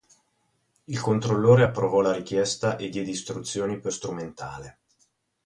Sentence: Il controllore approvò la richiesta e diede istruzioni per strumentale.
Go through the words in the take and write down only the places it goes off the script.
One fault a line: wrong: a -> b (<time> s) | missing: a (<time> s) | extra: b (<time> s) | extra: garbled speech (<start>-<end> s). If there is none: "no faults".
no faults